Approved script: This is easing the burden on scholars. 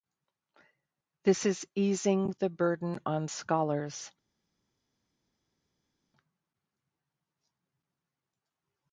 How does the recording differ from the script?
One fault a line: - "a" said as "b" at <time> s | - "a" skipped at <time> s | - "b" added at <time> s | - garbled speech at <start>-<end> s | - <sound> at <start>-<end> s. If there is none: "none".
none